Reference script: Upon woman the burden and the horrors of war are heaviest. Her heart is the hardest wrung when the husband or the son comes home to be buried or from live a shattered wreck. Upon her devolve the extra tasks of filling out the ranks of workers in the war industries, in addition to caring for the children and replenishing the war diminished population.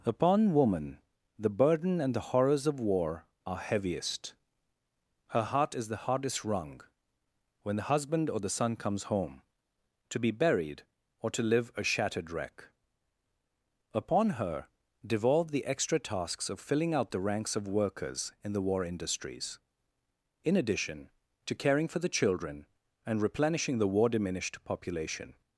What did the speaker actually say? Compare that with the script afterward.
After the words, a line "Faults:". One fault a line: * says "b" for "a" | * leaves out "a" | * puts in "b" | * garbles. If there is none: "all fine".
Upon woman the burden and the horrors of war are heaviest. Her heart is the hardest wrung when the husband or the son comes home to be buried or to live a shattered wreck. Upon her devolve the extra tasks of filling out the ranks of workers in the war industries, in addition to caring for the children and replenishing the war diminished population.
Faults:
* says "to" for "from"